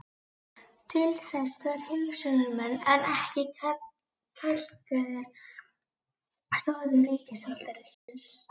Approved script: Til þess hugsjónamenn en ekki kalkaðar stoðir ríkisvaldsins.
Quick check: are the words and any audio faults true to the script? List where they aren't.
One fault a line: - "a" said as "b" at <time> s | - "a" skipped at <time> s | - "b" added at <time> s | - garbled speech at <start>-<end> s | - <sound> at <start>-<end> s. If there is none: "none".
- "þarf" added at 1.6 s
- dropout at 7.9-8.1 s